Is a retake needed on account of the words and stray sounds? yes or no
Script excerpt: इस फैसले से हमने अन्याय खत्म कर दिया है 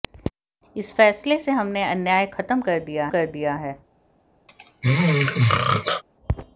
yes